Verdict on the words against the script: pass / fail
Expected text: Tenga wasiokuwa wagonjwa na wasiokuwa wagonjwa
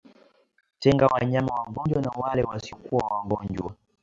fail